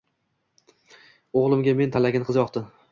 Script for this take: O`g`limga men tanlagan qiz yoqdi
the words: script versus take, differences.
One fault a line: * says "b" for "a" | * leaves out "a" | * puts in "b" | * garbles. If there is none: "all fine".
all fine